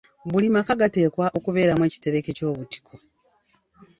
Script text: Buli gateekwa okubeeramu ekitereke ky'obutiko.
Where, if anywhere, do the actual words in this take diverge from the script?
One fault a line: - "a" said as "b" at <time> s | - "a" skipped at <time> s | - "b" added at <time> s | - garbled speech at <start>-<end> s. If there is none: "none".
- "maka" added at 0.6 s